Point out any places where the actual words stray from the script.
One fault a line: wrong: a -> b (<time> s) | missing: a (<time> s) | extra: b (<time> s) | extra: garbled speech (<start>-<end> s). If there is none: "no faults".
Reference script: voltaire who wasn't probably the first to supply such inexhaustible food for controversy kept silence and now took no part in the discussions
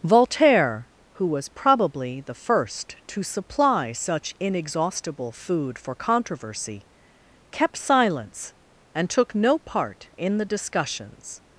wrong: wasn't -> was (1.3 s)
missing: now (9.1 s)